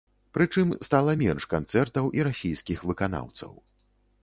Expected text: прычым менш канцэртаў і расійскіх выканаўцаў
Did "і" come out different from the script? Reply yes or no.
no